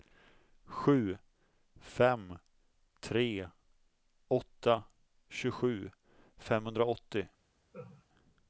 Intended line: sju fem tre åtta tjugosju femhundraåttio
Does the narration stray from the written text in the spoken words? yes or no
no